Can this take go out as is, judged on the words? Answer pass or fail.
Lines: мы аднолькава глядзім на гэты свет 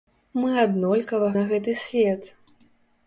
fail